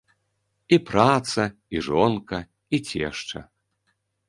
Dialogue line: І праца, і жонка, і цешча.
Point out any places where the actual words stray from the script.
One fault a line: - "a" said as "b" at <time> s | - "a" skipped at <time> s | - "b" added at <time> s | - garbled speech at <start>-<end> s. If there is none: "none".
none